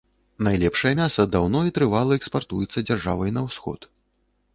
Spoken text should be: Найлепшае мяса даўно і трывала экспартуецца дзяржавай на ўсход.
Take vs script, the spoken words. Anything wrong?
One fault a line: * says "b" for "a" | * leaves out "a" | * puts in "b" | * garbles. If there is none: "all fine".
all fine